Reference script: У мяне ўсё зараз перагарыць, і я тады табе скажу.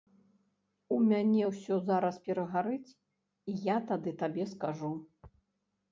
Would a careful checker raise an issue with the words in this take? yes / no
no